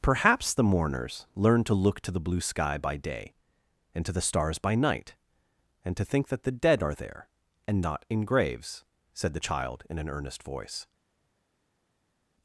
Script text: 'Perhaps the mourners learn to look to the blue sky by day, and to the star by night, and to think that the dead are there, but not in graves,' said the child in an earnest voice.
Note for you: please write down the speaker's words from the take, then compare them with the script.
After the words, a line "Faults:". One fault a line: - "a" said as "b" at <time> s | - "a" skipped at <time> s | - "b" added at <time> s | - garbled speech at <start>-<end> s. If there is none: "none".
'Perhaps the mourners learn to look to the blue sky by day, and to the stars by night, and to think that the dead are there, and not in graves,' said the child in an earnest voice.
Faults:
- "star" said as "stars" at 4.2 s
- "but" said as "and" at 7.7 s